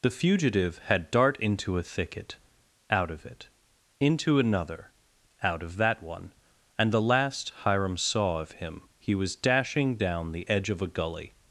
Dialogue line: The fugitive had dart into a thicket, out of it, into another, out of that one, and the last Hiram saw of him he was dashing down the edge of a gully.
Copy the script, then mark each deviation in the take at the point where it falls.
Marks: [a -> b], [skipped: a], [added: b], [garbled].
The fugitive had dart into a thicket, out of it, into another, out of that one, and the last Hiram saw of him he was dashing down the edge of a gully.